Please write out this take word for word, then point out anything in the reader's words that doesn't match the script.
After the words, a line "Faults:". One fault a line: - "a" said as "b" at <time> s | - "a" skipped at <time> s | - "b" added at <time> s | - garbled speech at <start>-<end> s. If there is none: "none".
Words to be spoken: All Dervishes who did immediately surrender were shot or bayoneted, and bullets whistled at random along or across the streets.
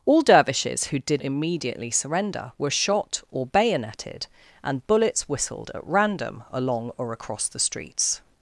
All Dervishes who did immediately surrender were shot or bayoneted, and bullets whistled at random along or across the streets.
Faults:
none